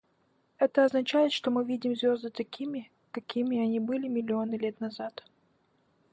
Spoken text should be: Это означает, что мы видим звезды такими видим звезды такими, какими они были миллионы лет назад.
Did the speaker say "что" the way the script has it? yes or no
yes